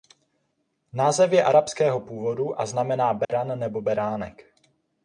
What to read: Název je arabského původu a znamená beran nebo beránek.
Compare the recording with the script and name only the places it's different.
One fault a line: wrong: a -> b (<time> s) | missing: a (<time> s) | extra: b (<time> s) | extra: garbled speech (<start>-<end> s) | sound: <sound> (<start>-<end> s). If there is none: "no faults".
sound: dropout (3.2-3.3 s)